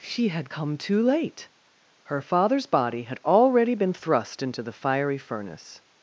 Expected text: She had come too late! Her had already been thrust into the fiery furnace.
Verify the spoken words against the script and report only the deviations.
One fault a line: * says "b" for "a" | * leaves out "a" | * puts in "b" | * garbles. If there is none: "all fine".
* puts in "father's body"